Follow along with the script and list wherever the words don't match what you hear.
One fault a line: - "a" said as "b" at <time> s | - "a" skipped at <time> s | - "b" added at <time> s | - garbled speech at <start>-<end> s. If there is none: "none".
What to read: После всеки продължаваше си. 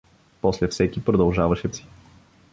none